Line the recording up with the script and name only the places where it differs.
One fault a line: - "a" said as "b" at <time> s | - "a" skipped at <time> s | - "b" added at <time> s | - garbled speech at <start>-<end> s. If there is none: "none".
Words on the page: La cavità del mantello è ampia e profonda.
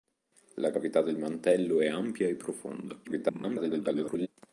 - garbled speech at 3.0-4.3 s